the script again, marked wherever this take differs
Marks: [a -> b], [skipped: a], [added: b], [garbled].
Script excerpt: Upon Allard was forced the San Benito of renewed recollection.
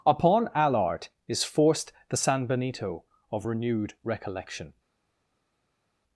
Upon Allard [was -> is] forced the San Benito of renewed recollection.